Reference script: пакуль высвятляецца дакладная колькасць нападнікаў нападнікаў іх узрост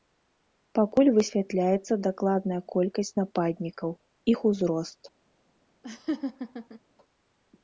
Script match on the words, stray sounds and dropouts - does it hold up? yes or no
no